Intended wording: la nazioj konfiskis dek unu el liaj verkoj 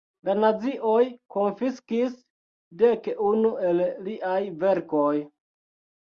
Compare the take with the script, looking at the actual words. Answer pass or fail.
pass